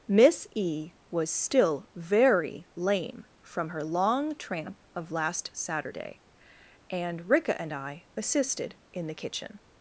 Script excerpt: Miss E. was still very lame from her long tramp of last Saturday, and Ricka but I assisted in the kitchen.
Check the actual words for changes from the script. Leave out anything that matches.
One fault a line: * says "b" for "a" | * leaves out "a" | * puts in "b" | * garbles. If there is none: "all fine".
* says "and" for "but"